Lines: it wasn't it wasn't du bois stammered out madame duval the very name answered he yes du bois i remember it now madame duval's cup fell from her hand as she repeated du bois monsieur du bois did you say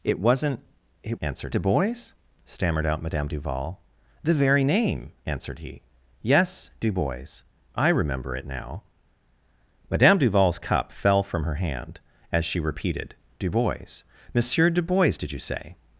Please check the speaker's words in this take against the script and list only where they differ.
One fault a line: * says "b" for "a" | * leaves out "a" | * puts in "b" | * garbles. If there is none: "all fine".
* says "answered" for "wasn't"